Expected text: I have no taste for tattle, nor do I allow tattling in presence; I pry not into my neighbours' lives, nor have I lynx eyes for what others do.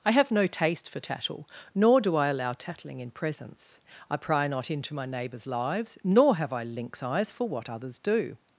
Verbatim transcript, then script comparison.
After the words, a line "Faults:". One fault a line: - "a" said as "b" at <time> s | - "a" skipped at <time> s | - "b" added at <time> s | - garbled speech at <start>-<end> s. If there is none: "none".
I have no taste for tattle, nor do I allow tattling in presence; I pry not into my neighbours' lives, nor have I lynx eyes for what others do.
Faults:
none